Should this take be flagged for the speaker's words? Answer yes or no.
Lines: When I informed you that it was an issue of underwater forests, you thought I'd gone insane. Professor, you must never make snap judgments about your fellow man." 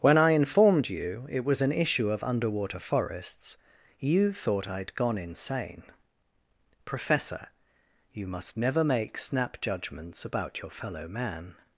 yes